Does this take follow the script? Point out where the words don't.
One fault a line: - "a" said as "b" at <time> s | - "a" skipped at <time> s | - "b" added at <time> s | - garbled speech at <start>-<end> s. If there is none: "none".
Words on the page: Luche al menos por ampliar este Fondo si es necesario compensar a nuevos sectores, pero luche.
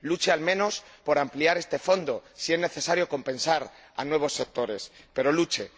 none